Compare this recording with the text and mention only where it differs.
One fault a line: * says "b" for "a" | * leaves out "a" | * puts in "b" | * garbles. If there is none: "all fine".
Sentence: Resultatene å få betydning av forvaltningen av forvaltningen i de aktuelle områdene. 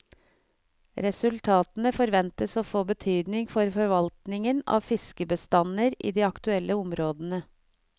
* puts in "forventes"
* says "for" for "av"
* says "fiskebestander" for "forvaltningen"